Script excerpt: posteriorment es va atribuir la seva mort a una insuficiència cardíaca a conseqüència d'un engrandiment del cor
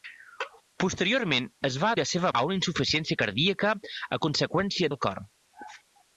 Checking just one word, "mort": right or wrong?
wrong